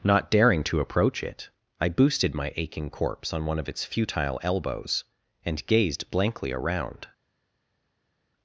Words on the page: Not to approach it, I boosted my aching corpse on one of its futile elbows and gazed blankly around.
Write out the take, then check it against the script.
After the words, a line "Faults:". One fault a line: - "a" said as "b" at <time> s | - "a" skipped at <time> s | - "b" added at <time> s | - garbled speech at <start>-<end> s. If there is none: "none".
Not daring to approach it, I boosted my aching corpse on one of its futile elbows and gazed blankly around.
Faults:
- "daring" added at 0.3 s